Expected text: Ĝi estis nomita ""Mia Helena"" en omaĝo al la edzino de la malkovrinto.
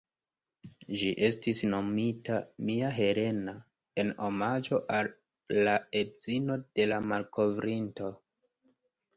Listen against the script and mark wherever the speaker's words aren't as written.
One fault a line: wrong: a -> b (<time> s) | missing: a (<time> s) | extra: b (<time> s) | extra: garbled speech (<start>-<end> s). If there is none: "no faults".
no faults